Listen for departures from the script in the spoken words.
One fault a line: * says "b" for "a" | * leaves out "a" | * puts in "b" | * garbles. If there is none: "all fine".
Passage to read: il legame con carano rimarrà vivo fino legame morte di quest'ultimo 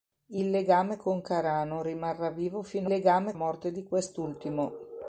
all fine